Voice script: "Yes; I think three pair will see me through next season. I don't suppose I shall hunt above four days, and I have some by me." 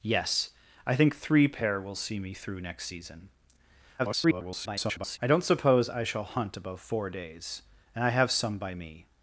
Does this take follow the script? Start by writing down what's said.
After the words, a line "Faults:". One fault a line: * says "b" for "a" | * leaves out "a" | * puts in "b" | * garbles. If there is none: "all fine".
"Yes; I think three pair will see me through next season. [garbled] I don't suppose I shall hunt above four days, and I have some by me."
Faults:
* garbles